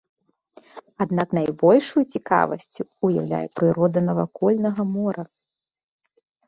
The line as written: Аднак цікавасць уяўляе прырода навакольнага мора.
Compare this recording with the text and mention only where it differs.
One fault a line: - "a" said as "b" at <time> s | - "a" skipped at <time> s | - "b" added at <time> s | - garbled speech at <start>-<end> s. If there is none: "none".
- "найбольшую" added at 1.4 s